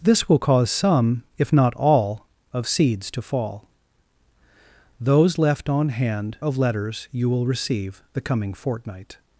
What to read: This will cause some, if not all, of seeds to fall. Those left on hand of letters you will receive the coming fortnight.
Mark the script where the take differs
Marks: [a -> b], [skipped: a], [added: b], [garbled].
This will cause some, if not all, of seeds to fall. Those left on hand of letters you will receive the coming fortnight.